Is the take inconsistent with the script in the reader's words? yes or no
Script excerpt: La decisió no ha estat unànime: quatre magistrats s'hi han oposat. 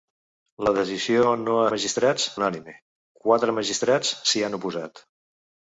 yes